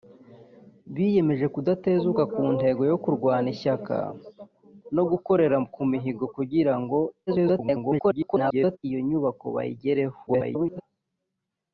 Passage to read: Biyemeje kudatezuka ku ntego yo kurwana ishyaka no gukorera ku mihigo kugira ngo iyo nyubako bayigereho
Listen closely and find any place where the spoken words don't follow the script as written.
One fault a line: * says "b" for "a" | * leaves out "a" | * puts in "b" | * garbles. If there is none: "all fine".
* garbles
* garbles